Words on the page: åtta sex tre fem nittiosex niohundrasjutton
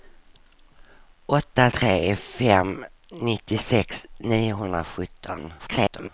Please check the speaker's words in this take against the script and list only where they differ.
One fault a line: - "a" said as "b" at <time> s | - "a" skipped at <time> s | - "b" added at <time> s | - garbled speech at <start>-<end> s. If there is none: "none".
- "sex" skipped at 1.7 s
- garbled speech at 5.6-6.1 s